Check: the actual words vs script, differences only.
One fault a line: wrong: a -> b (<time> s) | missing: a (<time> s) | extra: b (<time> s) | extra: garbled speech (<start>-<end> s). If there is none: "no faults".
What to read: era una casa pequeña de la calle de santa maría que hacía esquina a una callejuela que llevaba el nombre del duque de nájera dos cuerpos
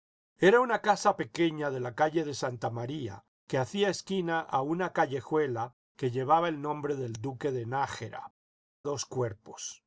no faults